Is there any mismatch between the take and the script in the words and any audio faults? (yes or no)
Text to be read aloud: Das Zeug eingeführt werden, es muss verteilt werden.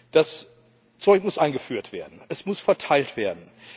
yes